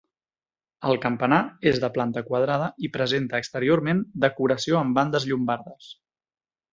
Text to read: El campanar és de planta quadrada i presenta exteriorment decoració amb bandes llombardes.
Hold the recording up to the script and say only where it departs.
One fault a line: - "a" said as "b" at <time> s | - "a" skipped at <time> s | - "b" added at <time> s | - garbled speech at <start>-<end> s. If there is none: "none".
none